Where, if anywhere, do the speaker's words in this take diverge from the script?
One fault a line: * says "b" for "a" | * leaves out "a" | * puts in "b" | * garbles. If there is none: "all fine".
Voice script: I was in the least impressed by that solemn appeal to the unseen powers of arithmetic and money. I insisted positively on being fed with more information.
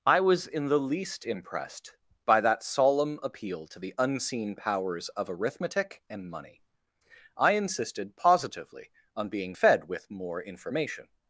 all fine